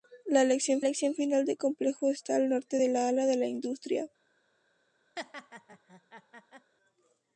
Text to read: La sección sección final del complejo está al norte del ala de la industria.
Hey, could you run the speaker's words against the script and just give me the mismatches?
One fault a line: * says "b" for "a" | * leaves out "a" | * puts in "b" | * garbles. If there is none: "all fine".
all fine